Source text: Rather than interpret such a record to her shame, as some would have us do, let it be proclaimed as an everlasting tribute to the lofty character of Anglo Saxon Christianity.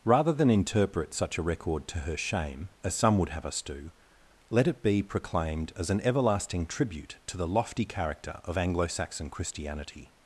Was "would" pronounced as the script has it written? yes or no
yes